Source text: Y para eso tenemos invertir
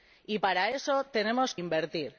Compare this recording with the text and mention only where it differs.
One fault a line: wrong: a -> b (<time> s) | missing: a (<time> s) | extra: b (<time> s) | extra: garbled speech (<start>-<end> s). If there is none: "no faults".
no faults